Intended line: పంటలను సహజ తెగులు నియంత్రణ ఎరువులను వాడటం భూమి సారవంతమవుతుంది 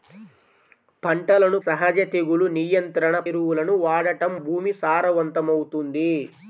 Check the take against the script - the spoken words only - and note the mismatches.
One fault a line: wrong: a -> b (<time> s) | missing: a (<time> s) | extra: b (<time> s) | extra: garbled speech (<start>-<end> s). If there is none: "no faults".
no faults